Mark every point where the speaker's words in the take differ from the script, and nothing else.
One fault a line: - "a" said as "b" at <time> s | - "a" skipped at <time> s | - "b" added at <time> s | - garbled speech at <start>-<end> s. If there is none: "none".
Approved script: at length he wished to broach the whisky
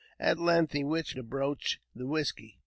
none